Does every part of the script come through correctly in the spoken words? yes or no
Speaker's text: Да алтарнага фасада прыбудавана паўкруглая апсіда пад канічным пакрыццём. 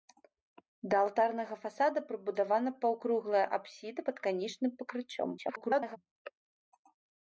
no